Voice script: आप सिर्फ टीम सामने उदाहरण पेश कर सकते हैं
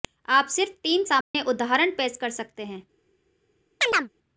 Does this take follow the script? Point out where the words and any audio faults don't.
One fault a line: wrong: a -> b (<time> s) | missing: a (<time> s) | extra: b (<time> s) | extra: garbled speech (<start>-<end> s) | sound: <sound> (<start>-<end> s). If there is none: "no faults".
sound: dropout (1.2-1.3 s)
sound: chirp (3.8-4.1 s)